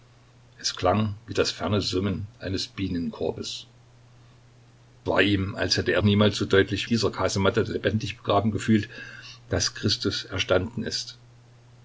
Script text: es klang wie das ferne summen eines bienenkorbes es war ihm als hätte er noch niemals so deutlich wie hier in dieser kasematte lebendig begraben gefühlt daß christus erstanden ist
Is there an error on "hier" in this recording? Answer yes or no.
yes